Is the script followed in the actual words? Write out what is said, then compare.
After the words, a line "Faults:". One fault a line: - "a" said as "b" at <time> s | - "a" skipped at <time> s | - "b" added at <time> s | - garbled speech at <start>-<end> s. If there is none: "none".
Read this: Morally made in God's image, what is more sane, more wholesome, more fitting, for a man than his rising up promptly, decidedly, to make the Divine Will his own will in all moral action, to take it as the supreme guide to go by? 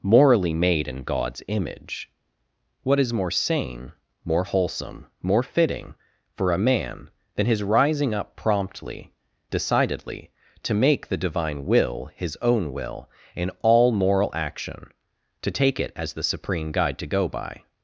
Morally made in God's image, what is more sane, more wholesome, more fitting, for a man than his rising up promptly, decidedly, to make the Divine Will his own will in all moral action, to take it as the supreme guide to go by?
Faults:
none